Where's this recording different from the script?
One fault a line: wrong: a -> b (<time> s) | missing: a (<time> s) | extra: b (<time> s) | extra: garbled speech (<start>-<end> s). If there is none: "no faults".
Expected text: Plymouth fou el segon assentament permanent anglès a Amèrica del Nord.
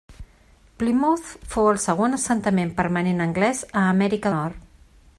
missing: del (4.3 s)